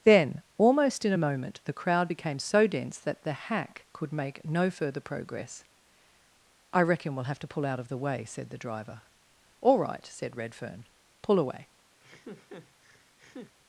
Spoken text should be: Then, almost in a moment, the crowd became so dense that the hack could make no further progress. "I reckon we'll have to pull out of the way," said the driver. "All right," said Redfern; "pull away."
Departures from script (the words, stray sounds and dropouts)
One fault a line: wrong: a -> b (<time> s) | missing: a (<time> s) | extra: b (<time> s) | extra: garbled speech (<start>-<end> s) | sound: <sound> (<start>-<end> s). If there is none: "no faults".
sound: laugh (12.0-13.5 s)